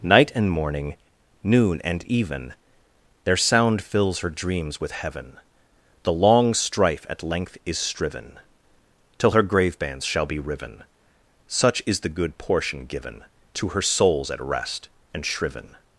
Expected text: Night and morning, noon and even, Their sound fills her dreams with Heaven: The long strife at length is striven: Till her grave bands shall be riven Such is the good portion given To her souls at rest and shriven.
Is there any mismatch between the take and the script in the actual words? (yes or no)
no